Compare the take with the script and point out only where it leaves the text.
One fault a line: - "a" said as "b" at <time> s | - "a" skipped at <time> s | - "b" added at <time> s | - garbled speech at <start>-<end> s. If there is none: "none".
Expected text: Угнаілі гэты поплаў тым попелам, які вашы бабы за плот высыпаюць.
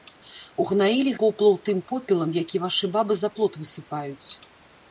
- "гэты" skipped at 1.1 s